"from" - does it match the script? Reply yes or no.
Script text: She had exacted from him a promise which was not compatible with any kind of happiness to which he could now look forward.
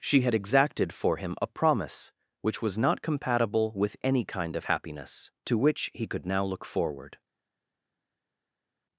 no